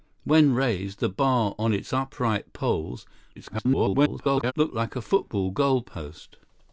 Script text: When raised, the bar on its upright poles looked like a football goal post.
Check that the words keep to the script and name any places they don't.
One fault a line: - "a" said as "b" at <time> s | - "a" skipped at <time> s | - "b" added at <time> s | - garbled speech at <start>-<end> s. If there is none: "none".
- garbled speech at 3.4-4.5 s